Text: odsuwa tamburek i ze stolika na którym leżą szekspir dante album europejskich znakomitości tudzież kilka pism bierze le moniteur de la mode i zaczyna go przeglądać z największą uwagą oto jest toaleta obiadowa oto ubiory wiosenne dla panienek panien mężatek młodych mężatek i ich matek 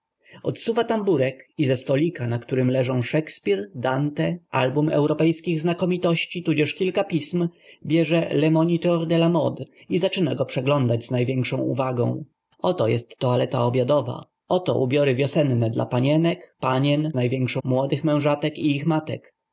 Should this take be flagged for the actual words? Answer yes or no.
yes